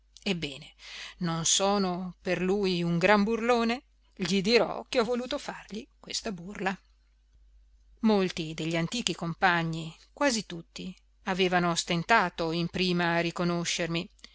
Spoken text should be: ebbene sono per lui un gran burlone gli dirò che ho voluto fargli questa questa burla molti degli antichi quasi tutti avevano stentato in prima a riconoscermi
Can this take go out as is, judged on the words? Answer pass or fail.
fail